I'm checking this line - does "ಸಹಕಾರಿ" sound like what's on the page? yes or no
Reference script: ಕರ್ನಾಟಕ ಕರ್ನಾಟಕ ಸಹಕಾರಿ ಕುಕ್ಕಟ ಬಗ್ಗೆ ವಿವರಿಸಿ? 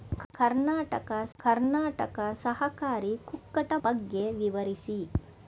yes